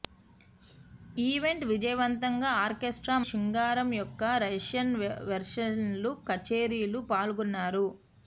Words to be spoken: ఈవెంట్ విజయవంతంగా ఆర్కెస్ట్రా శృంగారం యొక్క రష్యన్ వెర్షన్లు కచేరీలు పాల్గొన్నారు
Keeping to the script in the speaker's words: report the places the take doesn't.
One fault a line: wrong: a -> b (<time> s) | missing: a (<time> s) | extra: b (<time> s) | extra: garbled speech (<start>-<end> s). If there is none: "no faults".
no faults